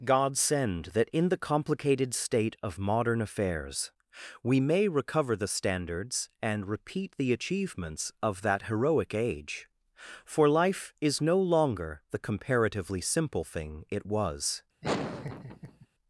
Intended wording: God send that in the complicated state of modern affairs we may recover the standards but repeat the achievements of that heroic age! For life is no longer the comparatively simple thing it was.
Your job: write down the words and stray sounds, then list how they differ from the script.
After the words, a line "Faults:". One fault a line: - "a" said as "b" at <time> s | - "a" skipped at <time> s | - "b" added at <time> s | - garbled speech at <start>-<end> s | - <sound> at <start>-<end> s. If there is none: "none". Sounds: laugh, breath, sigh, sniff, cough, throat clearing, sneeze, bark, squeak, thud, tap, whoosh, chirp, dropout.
God send that in the complicated state of modern affairs we may recover the standards and repeat the achievements of that heroic age! For life is no longer the comparatively simple thing it was.
Faults:
- "but" said as "and" at 6.4 s
- laugh at 14.8-15.9 s